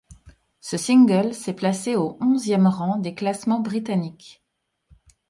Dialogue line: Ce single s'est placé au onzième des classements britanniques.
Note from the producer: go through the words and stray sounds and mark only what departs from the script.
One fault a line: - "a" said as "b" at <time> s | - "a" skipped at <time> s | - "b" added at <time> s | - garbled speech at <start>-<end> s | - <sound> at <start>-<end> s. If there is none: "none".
- "rang" added at 2.7 s